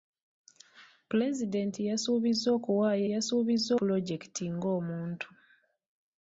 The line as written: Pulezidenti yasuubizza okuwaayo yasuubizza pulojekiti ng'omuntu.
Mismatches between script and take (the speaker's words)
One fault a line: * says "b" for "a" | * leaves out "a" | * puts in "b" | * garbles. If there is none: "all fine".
all fine